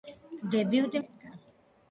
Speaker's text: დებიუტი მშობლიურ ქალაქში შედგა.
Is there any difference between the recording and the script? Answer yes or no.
yes